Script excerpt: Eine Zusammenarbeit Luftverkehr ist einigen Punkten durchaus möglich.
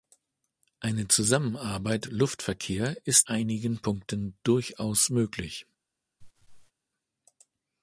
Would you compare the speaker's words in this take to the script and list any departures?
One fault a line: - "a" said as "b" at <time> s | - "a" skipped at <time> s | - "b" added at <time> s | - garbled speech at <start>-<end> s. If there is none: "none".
none